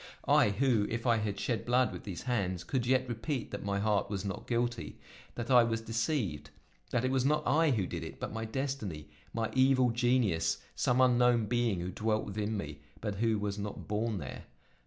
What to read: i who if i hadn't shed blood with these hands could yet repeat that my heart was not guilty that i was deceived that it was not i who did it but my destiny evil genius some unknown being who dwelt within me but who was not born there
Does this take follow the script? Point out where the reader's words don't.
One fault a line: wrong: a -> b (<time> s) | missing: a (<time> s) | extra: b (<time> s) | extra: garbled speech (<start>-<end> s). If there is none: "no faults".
wrong: hadn't -> had (1.2 s)
extra: my (9.3 s)